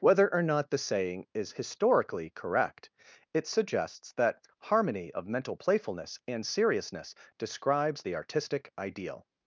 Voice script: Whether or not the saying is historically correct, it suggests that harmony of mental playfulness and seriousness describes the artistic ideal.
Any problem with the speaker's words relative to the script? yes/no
no